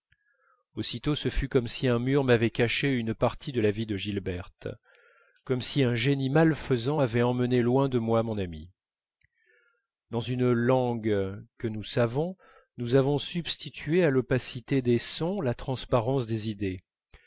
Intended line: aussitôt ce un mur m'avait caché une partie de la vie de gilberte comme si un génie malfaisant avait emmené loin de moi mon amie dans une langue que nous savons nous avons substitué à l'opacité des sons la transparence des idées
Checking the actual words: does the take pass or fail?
fail